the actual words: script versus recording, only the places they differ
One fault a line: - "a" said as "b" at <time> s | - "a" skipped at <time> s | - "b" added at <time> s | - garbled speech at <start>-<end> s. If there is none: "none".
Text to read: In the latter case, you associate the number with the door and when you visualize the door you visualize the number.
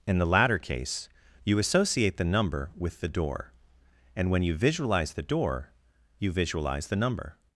none